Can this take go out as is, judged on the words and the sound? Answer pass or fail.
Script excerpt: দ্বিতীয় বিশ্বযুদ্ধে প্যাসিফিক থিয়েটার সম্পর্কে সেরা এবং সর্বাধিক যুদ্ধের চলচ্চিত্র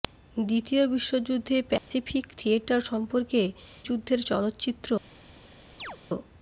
fail